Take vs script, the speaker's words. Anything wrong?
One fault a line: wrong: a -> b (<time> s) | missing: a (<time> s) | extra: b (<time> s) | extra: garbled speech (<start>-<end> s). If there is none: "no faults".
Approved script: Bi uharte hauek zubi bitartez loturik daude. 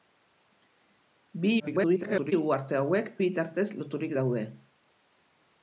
extra: garbled speech (1.6-2.3 s)
missing: zubi (3.1 s)